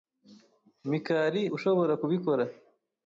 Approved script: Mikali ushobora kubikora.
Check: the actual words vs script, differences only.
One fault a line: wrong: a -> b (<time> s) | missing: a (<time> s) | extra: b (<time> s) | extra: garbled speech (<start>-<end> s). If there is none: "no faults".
no faults